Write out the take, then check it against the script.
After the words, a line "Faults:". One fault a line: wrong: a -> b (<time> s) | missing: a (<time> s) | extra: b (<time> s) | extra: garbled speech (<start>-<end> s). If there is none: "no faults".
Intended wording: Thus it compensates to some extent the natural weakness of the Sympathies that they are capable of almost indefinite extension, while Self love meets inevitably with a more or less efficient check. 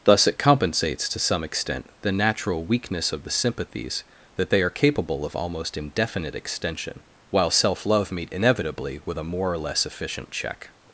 Thus it compensates to some extent the natural weakness of the Sympathies that they are capable of almost indefinite extension, while Self love meet inevitably with a more or less efficient check.
Faults:
wrong: meets -> meet (8.1 s)